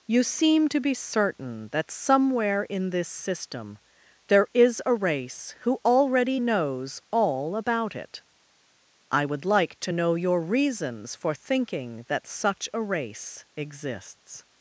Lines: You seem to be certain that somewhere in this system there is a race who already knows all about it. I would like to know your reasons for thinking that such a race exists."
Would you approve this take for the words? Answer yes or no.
yes